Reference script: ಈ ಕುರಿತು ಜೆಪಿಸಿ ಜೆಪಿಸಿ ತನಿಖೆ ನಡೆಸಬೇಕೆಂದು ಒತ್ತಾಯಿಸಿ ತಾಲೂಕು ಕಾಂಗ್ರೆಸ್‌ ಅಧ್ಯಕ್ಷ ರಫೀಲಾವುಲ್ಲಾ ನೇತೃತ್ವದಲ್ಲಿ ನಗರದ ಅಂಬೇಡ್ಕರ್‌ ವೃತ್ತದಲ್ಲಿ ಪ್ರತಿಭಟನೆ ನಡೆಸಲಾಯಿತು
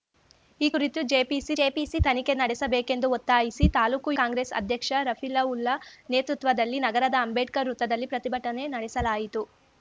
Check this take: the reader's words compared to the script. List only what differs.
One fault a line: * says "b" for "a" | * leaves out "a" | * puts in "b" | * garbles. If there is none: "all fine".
all fine